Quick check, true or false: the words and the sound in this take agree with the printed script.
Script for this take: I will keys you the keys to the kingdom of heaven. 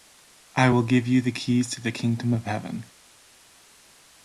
false